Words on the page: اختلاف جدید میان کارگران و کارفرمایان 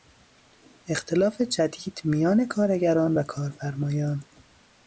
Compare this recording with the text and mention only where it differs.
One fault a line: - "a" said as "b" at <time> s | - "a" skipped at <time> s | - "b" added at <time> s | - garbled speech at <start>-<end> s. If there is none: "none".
none